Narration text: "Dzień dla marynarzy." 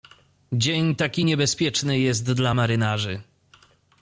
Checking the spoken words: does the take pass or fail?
fail